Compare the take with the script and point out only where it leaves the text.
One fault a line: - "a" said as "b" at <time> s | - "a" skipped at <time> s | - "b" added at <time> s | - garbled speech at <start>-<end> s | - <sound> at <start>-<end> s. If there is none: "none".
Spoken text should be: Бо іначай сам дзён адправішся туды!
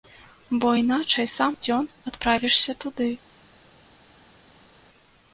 none